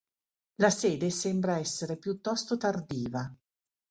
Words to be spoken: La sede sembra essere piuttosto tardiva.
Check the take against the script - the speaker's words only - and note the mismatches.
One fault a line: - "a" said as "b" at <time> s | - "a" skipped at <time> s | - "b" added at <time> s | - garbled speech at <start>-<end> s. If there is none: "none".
none